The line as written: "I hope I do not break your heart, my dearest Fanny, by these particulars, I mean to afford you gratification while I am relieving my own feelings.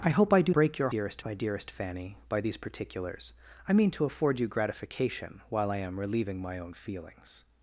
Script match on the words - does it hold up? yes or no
no